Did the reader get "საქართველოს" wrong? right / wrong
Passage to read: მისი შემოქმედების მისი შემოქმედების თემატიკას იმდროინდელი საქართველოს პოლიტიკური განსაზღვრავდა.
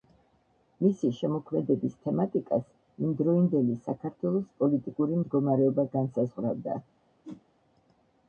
right